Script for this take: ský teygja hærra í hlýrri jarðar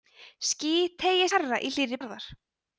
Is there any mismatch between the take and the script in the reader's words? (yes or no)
no